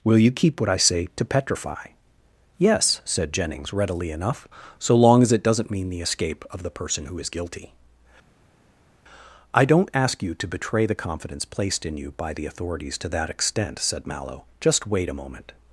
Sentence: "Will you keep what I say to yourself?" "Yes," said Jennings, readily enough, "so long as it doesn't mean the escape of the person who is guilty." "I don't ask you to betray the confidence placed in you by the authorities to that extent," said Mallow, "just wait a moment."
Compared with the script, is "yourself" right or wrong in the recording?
wrong